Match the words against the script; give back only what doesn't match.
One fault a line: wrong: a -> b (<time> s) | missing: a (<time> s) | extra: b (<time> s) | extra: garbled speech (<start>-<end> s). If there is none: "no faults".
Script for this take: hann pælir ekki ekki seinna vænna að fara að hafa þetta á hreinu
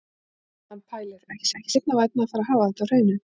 no faults